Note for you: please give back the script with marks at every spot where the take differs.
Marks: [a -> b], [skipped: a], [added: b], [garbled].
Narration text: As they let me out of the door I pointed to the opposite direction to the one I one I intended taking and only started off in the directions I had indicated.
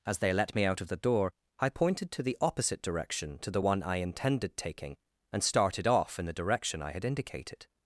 As they let me out of the door I pointed to the opposite direction to the one I [skipped: one I] intended taking and [skipped: only] started off in the [directions -> direction] I had indicated.